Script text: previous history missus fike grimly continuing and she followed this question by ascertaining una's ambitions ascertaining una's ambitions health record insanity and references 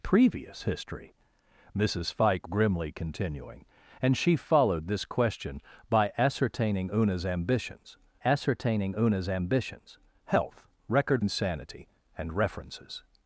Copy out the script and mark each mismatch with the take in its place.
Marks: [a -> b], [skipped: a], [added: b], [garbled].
previous history missus fike grimly continuing and she followed this question by ascertaining una's ambitions ascertaining una's ambitions health record insanity and references